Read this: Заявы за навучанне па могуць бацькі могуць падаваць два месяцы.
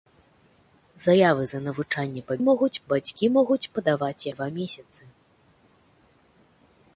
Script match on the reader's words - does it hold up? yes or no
yes